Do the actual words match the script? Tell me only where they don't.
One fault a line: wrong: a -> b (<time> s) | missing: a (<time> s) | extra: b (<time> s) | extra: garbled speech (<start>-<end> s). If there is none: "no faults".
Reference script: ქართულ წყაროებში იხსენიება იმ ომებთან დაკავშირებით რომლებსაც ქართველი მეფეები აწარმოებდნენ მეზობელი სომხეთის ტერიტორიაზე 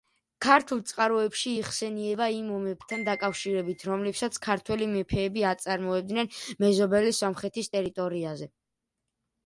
no faults